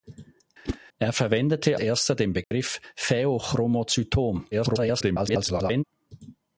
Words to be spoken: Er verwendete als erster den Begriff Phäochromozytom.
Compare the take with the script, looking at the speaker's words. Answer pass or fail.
fail